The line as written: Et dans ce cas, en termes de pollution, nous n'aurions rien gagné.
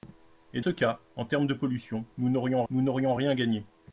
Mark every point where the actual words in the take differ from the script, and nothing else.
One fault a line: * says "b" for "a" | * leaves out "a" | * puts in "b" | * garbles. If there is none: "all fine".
* leaves out "dans"
* puts in "nous n'aurions"